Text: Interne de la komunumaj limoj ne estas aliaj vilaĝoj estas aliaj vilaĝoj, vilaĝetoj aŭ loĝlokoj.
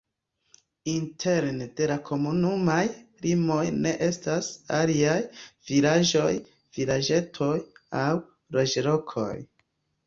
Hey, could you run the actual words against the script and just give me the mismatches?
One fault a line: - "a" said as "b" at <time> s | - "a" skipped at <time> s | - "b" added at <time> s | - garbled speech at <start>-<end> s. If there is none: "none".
- "estas aliaj vilaĝoj" skipped at 6.3 s